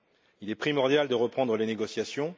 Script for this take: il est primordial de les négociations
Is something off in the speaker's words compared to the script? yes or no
yes